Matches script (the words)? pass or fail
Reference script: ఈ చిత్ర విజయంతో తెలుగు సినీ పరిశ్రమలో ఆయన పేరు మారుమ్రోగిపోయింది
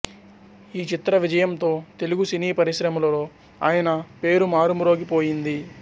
pass